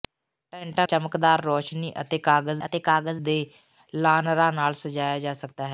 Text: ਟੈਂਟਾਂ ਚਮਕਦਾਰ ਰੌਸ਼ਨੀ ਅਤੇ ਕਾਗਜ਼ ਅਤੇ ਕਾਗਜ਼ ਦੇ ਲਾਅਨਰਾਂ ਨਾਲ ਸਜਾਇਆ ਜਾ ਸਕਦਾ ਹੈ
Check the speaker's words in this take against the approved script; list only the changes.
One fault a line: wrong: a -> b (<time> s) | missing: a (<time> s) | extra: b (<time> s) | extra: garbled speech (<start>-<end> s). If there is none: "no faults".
no faults